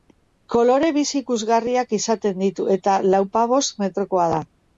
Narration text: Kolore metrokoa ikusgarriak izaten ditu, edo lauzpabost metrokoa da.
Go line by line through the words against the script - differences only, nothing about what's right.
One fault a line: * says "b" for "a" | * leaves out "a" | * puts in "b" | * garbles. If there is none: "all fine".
* says "bizi" for "metrokoa"
* says "eta" for "edo"